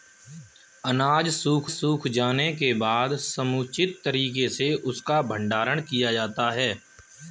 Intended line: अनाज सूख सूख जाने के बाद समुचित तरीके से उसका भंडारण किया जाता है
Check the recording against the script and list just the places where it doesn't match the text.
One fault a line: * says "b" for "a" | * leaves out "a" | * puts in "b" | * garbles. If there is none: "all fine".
all fine